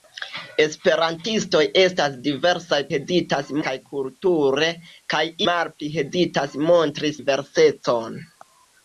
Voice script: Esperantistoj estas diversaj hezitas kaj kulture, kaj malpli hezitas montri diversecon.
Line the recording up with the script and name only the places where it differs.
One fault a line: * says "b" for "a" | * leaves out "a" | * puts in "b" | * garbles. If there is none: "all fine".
all fine